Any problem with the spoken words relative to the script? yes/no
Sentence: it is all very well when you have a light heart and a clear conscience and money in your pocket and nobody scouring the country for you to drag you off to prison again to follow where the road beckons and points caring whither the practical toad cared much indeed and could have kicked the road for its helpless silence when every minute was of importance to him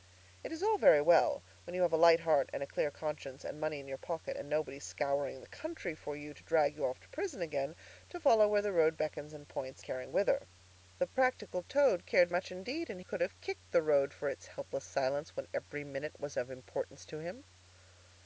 no